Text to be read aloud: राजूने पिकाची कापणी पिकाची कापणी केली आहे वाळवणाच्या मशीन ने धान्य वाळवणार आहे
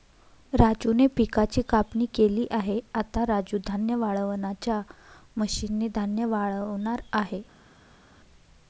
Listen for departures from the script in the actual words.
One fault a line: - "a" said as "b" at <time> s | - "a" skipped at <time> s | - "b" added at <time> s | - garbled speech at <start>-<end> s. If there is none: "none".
- "पिकाची कापणी केली आहे" said as "केली आहे आता राजू धान्य" at 2.1 s